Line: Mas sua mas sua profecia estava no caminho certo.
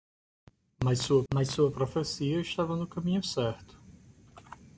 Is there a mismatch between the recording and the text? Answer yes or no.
no